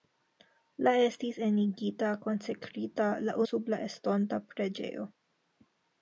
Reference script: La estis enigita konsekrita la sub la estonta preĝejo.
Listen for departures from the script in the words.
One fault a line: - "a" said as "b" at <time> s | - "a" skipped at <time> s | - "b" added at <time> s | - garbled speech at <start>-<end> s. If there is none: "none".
none